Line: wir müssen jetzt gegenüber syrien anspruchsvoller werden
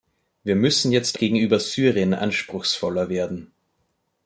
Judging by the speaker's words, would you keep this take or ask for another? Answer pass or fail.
pass